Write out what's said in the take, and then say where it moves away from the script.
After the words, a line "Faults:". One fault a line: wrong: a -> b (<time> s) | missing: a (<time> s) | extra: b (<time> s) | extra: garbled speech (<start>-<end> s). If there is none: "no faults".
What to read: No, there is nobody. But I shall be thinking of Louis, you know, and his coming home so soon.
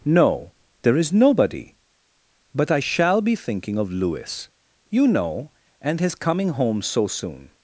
No, there is nobody. But I shall be thinking of Louis, you know, and his coming home so soon.
Faults:
no faults